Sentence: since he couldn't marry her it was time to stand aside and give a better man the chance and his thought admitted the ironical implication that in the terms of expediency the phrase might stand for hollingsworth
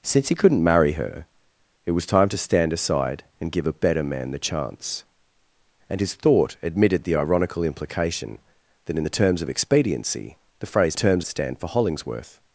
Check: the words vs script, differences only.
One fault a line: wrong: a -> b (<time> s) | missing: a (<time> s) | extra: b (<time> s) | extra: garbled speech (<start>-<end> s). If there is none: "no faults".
wrong: might -> terms (10.9 s)